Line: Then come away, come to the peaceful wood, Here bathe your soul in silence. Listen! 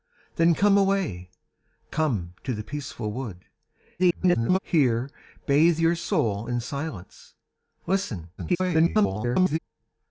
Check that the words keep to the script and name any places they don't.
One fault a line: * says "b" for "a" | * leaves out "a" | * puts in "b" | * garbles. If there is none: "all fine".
* garbles
* garbles